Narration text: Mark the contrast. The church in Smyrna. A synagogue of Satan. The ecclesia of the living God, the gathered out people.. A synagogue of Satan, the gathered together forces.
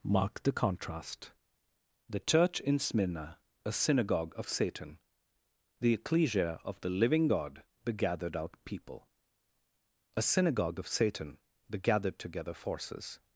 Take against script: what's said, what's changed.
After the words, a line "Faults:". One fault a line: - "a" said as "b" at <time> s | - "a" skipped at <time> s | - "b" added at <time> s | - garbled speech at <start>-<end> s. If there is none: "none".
Mark the contrast. The church in Smyrna. A synagogue of Satan. The ecclesia of the living God, the gathered out people.. A synagogue of Satan, the gathered together forces.
Faults:
none